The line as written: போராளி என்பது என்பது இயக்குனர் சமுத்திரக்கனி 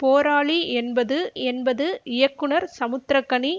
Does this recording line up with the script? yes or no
yes